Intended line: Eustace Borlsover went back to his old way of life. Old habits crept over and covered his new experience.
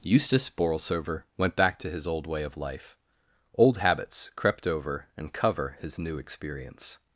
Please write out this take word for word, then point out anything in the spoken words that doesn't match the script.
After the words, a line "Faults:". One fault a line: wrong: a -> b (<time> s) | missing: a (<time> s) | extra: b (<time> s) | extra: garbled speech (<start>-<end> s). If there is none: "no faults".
Eustace Borlsover went back to his old way of life. Old habits crept over and cover his new experience.
Faults:
wrong: covered -> cover (5.3 s)